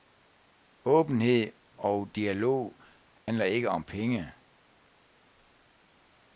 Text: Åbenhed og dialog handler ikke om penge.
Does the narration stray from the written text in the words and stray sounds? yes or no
yes